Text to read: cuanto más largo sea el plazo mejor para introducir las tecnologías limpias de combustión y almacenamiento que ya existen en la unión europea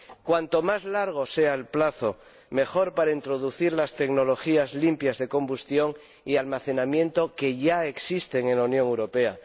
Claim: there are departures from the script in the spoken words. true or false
false